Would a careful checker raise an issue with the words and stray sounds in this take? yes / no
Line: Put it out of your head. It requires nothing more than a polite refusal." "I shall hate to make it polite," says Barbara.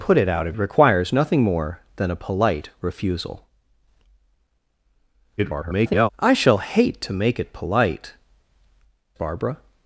yes